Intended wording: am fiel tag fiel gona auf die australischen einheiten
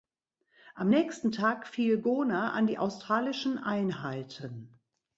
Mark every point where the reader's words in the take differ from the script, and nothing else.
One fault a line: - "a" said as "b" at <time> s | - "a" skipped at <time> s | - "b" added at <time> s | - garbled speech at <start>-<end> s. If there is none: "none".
- "fiel" said as "nächsten" at 0.9 s
- "auf" said as "an" at 2.5 s